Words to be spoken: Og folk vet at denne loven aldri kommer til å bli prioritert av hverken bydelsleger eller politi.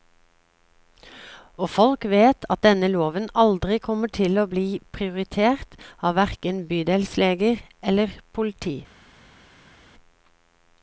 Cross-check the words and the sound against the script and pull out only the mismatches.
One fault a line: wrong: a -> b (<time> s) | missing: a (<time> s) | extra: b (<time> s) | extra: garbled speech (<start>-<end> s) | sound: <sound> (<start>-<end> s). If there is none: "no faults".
no faults